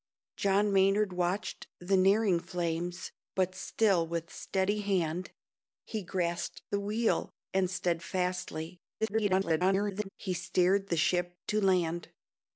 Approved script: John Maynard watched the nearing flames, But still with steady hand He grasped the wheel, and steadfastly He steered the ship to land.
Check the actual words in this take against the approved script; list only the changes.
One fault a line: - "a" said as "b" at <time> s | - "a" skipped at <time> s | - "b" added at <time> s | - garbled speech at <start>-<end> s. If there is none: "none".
- garbled speech at 9.0-10.1 s